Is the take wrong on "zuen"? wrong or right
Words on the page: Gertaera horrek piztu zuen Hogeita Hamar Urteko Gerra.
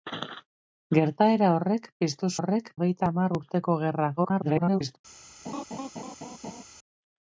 wrong